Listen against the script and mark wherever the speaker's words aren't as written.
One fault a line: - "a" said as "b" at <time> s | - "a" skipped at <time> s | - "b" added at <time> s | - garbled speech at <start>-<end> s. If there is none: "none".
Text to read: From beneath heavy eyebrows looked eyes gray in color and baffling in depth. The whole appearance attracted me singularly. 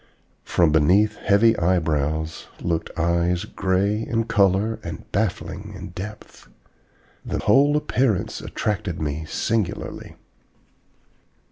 none